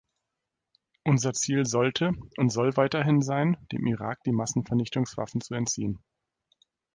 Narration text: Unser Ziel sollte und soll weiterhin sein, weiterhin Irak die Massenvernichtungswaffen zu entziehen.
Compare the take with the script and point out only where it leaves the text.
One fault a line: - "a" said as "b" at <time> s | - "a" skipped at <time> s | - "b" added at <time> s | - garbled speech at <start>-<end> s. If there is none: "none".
- "weiterhin" said as "dem" at 3.7 s